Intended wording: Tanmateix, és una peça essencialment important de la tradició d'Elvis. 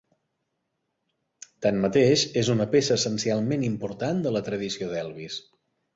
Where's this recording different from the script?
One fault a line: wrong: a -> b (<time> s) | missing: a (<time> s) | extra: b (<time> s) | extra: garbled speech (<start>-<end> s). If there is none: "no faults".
no faults